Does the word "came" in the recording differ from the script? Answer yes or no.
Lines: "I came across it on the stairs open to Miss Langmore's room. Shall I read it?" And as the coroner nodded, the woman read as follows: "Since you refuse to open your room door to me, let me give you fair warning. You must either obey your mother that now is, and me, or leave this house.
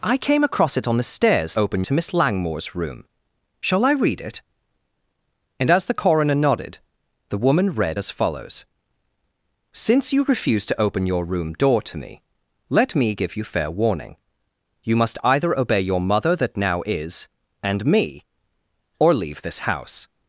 no